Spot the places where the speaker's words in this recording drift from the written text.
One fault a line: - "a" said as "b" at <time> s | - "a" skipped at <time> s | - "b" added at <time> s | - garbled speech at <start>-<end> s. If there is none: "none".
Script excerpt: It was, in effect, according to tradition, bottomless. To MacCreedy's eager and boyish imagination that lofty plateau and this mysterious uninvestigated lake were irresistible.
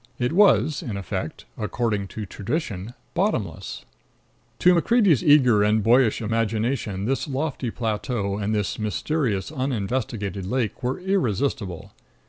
- "that" said as "this" at 7.0 s